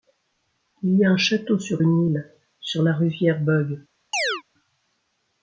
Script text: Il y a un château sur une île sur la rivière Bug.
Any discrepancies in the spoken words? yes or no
no